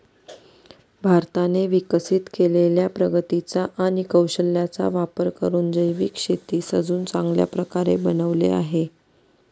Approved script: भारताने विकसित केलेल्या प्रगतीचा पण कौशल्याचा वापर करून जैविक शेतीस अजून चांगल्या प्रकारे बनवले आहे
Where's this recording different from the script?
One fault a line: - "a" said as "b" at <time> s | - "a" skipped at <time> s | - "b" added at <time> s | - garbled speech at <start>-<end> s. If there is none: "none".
- "पण" said as "आणि" at 3.8 s